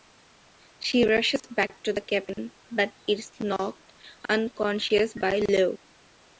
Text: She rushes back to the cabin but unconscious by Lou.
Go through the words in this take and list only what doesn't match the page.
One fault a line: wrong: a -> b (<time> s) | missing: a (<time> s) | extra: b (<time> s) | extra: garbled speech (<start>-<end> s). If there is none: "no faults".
extra: is knocked (3.1 s)